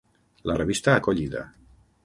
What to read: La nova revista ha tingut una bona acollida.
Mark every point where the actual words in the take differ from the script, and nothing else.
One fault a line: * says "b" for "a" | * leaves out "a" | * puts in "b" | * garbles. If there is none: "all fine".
* leaves out "nova"
* leaves out "tingut una bona"